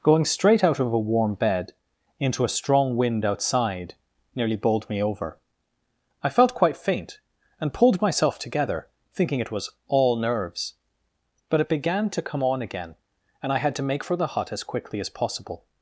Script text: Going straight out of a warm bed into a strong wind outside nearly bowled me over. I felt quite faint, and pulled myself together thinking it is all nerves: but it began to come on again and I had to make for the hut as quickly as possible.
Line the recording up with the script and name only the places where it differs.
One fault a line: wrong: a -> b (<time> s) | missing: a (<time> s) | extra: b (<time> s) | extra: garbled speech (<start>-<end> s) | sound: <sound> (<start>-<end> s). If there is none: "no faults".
wrong: is -> was (9.5 s)